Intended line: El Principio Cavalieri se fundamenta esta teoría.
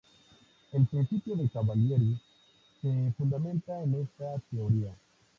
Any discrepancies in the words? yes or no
yes